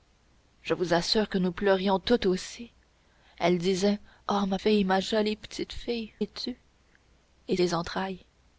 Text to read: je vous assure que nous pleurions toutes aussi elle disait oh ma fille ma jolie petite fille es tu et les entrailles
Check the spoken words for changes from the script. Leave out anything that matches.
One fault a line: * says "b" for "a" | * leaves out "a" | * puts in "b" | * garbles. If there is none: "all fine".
all fine